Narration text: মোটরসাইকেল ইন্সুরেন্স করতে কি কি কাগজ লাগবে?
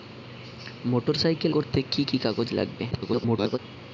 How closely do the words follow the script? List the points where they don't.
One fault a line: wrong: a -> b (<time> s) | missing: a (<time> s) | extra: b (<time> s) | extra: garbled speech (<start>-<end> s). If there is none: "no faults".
missing: ইন্সুরেন্স (1.5 s)
extra: garbled speech (2.9-3.6 s)